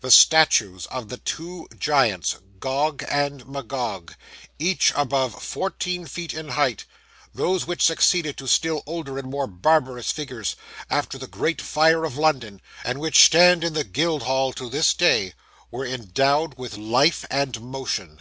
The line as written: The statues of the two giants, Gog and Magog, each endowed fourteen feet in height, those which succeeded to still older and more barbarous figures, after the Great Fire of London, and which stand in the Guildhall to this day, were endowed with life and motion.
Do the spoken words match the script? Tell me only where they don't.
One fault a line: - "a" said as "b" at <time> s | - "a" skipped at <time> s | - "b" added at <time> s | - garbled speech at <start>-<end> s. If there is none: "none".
- "endowed" said as "above" at 5.0 s